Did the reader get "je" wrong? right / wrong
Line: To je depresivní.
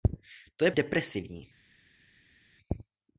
right